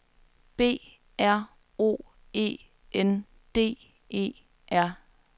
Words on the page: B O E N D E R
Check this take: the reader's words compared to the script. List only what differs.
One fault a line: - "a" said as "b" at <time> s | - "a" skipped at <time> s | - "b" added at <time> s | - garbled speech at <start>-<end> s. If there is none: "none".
- "R" added at 1.2 s